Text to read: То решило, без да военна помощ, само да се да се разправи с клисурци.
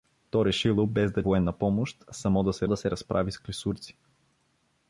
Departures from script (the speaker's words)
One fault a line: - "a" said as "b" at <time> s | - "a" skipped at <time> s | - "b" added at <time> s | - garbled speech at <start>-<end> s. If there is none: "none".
none